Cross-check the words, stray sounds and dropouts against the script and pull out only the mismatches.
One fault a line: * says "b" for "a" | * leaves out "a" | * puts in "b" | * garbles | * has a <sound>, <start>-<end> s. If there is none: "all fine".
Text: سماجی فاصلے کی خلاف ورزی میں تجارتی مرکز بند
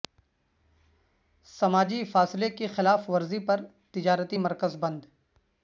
* says "پر" for "میں"